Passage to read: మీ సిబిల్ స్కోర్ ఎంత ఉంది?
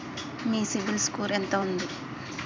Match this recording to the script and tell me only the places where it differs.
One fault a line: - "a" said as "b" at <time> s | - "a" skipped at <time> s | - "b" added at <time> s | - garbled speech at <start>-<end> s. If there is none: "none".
none